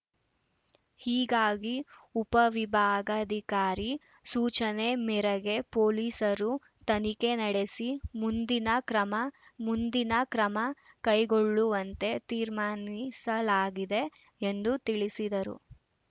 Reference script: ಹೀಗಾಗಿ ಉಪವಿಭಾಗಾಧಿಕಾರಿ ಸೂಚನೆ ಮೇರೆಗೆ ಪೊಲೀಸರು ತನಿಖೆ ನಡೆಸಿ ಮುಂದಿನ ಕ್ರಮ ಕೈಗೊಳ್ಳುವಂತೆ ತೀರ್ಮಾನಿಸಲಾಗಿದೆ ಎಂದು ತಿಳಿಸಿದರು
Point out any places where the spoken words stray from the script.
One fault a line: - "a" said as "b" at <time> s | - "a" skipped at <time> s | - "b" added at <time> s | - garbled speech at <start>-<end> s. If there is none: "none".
- "ಮುಂದಿನ ಕ್ರಮ" added at 9.7 s